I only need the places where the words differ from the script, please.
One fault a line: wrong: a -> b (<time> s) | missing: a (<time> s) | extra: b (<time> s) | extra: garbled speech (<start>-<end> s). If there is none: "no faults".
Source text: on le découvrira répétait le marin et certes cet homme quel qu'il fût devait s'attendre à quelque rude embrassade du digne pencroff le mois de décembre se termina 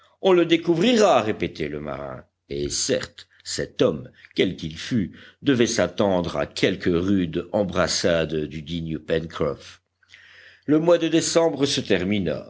no faults